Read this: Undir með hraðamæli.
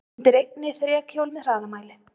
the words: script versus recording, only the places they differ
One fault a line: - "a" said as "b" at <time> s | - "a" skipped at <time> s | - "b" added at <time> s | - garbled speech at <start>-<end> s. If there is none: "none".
- "einni þrekhjól" added at 0.4 s